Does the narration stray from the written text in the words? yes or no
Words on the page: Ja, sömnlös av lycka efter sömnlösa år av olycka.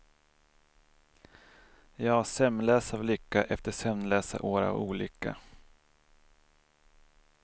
no